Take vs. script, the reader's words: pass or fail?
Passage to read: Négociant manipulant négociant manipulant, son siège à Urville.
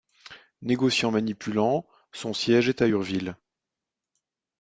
fail